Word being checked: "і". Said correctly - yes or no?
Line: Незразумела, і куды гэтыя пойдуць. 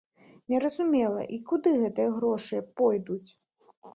yes